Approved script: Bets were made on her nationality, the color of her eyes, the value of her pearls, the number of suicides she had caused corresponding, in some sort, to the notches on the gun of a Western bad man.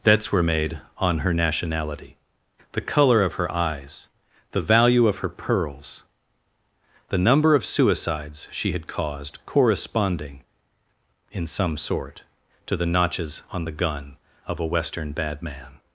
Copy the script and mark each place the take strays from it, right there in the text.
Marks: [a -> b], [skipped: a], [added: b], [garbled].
Bets were made on her nationality, the color of her eyes, the value of her pearls, the number of suicides she had caused corresponding, in some sort, to the notches on the gun of a Western bad man.